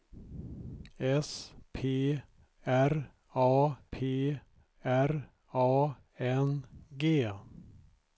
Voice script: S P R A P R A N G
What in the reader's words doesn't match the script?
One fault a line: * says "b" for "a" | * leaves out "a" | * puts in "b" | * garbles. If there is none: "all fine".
all fine